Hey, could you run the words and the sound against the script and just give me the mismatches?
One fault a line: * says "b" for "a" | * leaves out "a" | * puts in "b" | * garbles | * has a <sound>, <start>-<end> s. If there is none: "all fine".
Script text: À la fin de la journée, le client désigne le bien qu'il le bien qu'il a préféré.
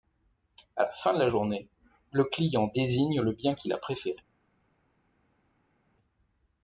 * leaves out "le bien qu'il"